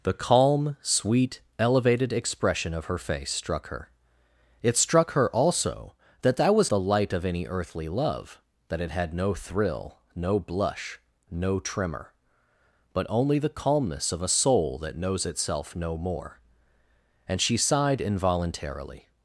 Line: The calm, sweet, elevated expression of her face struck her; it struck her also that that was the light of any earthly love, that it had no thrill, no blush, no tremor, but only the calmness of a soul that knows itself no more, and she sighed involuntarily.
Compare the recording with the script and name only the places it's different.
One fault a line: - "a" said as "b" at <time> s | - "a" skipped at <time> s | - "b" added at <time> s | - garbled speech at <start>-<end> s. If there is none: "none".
none